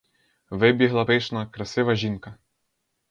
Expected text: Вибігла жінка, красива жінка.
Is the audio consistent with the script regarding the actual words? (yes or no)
no